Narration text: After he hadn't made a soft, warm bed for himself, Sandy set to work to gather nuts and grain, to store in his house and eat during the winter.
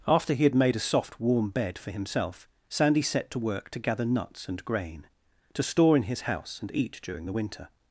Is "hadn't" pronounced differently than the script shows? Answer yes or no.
yes